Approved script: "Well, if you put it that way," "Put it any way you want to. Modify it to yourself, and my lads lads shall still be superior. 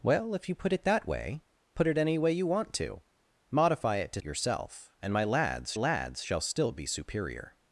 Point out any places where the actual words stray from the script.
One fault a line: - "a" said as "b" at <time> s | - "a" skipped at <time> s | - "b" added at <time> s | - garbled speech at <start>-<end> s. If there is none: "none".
none